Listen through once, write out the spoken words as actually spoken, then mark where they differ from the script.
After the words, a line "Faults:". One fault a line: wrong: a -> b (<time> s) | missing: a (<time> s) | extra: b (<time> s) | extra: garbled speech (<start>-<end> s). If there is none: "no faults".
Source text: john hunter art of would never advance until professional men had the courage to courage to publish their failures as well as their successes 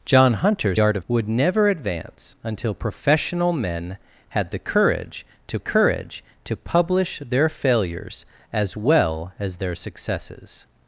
john hunter art of would never advance until professional men had the courage to courage to publish their failures as well as their successes
Faults:
no faults